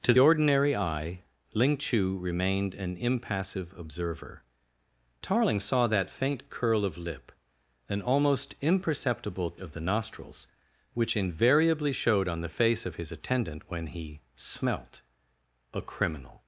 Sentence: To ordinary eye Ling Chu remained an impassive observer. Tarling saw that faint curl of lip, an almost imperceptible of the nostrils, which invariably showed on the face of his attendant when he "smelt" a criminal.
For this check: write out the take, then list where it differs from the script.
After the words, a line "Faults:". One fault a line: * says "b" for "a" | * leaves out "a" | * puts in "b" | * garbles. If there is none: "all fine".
To ordinary eye Ling Chu remained an impassive observer. Tarling saw that faint curl of lip, an almost imperceptible of the nostrils, which invariably showed on the face of his attendant when he "smelt" a criminal.
Faults:
all fine